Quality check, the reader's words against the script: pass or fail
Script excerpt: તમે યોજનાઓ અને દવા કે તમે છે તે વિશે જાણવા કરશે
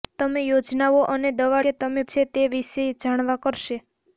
pass